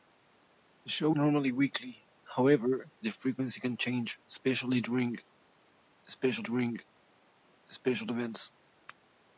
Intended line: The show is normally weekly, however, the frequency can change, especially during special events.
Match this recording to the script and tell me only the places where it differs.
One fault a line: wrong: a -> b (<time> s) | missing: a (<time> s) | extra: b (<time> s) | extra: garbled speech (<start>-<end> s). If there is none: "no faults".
missing: is (1.1 s)
extra: during special (6.4 s)